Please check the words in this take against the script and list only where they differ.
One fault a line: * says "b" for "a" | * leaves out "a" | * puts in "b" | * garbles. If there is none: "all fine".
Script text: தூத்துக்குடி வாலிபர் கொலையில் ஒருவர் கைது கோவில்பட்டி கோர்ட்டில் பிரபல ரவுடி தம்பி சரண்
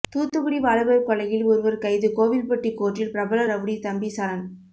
all fine